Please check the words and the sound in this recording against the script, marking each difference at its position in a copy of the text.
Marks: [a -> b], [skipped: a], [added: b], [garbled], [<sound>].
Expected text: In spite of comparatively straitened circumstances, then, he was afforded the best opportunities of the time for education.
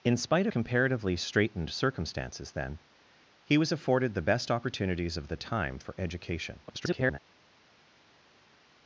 In spite [skipped: of] comparatively straitened circumstances, then, he was afforded the best opportunities of the time for education. [garbled]